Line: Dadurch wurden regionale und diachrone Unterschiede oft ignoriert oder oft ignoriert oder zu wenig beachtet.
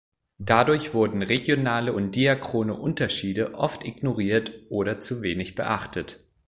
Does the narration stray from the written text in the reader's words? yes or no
yes